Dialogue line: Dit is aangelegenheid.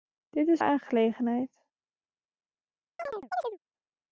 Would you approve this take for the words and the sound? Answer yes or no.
no